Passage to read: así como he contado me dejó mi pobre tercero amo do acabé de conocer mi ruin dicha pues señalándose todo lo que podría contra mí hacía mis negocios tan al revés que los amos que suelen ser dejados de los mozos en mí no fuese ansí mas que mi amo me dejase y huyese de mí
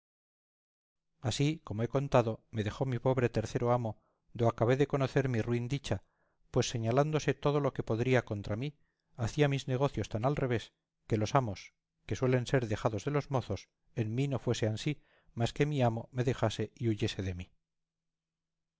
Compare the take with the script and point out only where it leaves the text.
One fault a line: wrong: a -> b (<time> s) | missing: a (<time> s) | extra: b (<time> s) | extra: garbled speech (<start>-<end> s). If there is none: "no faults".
no faults